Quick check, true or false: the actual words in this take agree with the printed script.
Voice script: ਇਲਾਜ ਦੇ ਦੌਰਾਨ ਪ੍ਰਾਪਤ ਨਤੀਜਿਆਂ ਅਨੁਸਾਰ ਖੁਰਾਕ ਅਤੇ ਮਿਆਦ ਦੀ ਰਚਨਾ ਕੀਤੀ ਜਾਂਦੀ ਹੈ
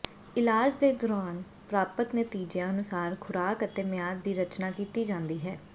true